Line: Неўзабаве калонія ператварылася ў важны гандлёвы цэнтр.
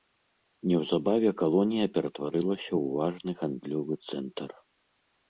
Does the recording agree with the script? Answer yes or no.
yes